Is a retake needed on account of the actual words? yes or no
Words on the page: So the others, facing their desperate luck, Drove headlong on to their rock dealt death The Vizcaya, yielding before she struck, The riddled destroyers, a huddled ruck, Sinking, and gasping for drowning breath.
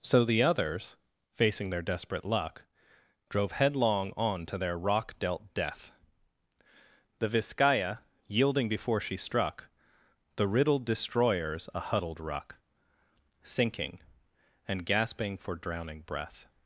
no